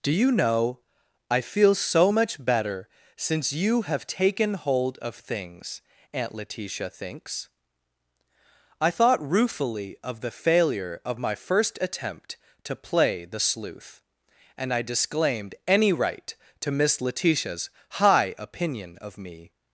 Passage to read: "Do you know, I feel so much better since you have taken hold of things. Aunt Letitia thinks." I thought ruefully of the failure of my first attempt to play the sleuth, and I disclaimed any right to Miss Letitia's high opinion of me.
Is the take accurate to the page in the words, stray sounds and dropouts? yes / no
yes